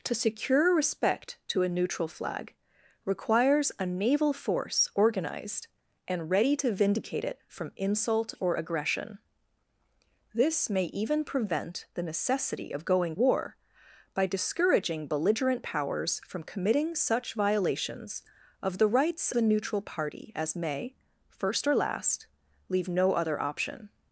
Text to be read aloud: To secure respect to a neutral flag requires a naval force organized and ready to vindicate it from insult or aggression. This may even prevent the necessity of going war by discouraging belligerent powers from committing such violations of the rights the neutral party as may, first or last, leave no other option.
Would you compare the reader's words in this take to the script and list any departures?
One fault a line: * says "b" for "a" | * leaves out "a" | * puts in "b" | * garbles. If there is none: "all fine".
all fine